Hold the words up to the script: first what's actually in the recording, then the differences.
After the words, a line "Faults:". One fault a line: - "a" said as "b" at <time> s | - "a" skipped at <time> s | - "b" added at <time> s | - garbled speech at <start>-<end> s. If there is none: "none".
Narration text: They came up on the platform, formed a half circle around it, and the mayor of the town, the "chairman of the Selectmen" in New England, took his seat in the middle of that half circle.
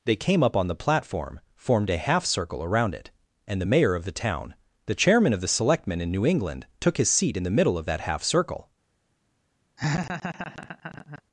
They came up on the platform, formed a half circle around it, and the mayor of the town, the "chairman of the Selectmen" in New England, took his seat in the middle of that half circle.
Faults:
none